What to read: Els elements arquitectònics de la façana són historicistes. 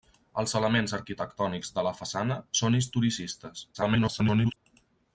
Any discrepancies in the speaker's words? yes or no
yes